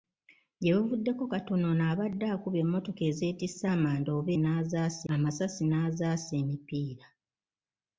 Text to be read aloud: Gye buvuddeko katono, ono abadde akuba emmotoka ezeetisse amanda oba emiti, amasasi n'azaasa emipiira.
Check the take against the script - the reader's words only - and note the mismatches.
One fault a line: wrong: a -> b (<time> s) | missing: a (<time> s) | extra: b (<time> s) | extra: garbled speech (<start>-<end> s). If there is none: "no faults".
wrong: emiti -> n'azaasa (4.4 s)